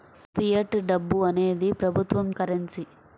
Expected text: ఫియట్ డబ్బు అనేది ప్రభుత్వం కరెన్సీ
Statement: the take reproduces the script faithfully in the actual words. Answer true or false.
true